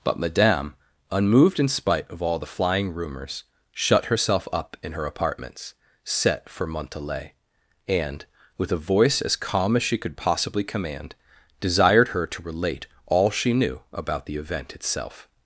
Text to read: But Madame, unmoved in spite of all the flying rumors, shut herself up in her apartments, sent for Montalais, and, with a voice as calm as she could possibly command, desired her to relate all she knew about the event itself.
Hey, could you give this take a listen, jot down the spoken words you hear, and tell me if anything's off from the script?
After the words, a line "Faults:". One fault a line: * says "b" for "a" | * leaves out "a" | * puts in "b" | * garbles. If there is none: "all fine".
But Madame, unmoved in spite of all the flying rumors, shut herself up in her apartments, set for Montalais, and, with a voice as calm as she could possibly command, desired her to relate all she knew about the event itself.
Faults:
* says "set" for "sent"